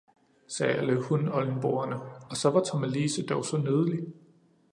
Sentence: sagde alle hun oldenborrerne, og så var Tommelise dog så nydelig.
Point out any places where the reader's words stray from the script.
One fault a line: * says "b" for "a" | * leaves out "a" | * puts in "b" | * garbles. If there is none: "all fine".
all fine